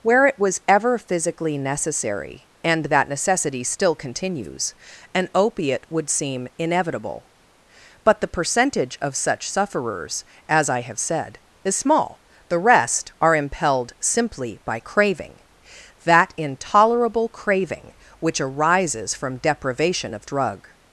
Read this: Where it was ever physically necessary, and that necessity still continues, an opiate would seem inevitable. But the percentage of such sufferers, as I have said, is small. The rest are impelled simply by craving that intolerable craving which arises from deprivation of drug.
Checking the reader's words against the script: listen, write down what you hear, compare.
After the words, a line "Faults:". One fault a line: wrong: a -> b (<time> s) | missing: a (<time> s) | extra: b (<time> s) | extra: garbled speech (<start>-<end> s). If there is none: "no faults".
Where it was ever physically necessary, and that necessity still continues, an opiate would seem inevitable. But the percentage of such sufferers, as I have said, is small. The rest are impelled simply by craving that intolerable craving which arises from deprivation of drug.
Faults:
no faults